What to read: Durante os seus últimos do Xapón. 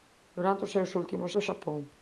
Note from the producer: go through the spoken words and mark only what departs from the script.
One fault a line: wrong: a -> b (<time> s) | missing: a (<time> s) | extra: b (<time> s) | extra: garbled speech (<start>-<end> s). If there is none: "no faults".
no faults